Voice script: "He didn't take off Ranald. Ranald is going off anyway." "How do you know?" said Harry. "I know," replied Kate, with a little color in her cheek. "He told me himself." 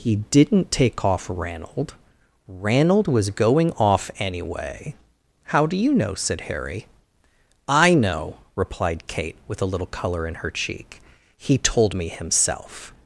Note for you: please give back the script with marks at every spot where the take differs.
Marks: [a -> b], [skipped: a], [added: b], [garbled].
"He didn't take off Ranald. Ranald [is -> was] going off anyway." "How do you know?" said Harry. "I know," replied Kate, with a little color in her cheek. "He told me himself."